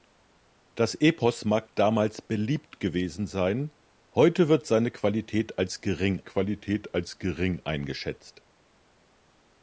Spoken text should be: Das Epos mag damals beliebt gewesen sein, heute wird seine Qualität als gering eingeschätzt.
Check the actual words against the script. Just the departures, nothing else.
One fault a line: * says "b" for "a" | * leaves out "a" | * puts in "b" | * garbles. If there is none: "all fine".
* puts in "Qualität als gering"